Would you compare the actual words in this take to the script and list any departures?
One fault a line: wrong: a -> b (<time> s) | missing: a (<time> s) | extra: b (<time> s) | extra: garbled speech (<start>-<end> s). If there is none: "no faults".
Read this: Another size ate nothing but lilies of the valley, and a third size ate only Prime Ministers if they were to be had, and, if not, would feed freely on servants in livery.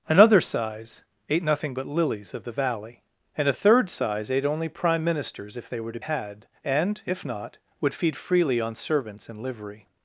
missing: be (6.0 s)